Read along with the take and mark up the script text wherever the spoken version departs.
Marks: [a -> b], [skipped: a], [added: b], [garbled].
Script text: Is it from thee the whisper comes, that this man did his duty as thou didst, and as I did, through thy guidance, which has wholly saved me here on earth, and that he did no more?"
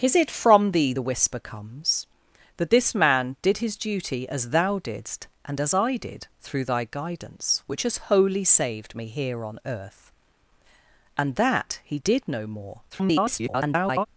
Is it from thee the whisper comes, that this man did his duty as thou didst, and as I did, through thy guidance, which has wholly saved me here on earth, and that he did no more?" [garbled]